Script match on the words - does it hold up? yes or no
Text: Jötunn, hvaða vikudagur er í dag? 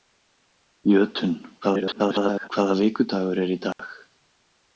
no